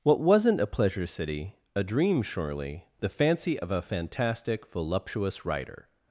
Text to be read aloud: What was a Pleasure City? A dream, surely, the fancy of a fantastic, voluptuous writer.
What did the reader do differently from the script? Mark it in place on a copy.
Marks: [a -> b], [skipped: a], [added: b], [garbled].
What [was -> wasn't] a Pleasure City? A dream, surely, the fancy of a fantastic, voluptuous writer.